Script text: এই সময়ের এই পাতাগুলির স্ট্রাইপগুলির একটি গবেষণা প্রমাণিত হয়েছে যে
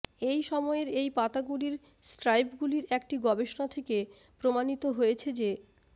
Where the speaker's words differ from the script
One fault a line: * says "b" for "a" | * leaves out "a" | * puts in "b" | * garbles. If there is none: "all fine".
* puts in "থেকে"